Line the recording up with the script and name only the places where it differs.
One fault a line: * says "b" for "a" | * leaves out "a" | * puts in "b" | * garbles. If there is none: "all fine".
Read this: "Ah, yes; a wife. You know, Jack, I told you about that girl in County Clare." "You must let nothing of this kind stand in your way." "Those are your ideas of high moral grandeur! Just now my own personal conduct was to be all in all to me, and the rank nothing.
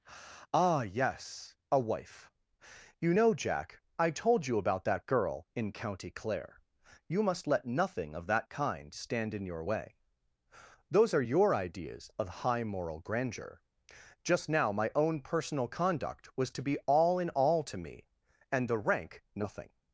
* says "that" for "this"